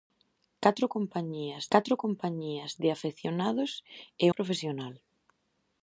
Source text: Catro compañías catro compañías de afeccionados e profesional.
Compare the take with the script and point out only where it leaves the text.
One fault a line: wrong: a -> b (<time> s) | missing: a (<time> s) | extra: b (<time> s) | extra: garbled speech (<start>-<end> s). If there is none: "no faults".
no faults